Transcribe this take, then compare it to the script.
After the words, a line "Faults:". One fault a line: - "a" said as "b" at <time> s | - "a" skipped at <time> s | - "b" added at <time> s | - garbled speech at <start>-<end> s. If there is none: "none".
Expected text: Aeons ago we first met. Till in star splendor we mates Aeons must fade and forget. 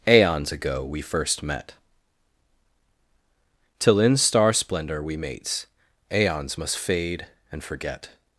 Aeons ago we first met. Till in star splendor we mates Aeons must fade and forget.
Faults:
none